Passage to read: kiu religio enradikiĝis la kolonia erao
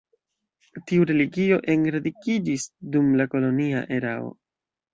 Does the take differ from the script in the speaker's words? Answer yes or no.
yes